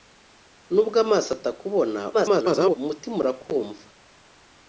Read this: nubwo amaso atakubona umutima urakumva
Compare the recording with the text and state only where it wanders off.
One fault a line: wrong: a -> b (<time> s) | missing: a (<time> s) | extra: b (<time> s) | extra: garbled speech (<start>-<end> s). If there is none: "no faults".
extra: garbled speech (2.1-2.8 s)